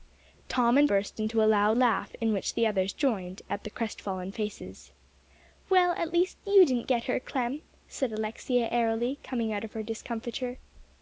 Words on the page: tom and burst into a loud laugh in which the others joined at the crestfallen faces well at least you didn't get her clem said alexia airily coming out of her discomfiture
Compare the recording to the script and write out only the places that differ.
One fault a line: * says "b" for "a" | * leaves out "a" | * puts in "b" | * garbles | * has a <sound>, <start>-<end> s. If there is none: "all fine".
all fine